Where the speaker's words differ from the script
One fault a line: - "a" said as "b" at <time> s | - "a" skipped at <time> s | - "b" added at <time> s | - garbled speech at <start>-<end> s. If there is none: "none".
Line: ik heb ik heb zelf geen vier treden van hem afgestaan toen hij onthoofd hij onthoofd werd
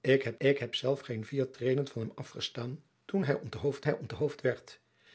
none